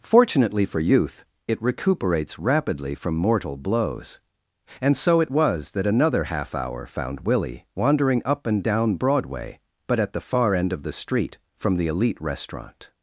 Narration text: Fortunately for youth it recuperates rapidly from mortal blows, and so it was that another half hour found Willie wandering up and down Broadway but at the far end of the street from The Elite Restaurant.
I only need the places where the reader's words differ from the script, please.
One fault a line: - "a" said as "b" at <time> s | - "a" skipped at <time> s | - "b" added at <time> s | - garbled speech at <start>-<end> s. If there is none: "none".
none